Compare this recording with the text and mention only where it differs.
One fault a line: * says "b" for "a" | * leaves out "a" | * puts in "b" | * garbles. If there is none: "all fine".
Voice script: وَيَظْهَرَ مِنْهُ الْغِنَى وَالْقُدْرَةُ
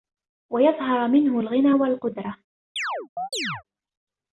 all fine